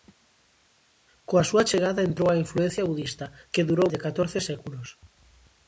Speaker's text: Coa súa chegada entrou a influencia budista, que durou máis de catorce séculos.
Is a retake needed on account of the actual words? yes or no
yes